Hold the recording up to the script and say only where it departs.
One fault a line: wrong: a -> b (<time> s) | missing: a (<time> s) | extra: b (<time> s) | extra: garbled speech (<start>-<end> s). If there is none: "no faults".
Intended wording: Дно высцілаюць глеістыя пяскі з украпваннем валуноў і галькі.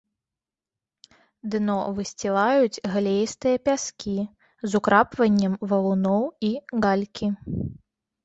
no faults